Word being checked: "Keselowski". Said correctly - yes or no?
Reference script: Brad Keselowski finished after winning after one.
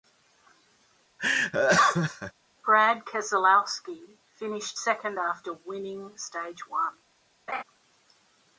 yes